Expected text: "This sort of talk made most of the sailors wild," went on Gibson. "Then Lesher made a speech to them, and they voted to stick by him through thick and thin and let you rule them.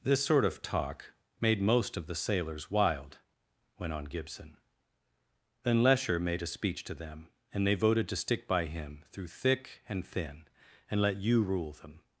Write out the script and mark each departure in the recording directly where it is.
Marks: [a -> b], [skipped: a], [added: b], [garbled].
"This sort of talk made most of the sailors wild," went on Gibson. "Then Lesher made a speech to them, and they voted to stick by him through thick and thin and let you rule them.